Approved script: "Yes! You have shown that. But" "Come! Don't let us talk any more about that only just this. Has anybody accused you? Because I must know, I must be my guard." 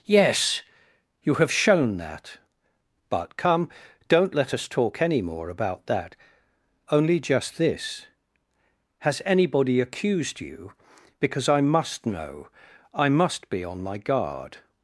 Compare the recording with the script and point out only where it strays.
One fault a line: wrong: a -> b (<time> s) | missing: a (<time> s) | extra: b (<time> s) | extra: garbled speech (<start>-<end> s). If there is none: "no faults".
extra: on (13.6 s)